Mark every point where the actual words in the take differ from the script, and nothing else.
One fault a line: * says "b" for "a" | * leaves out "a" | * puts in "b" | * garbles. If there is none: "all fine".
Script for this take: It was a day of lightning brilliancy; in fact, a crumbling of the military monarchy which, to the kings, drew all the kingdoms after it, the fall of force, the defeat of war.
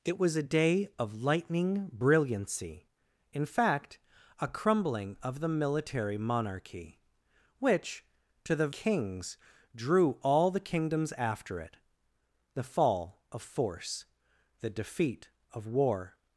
all fine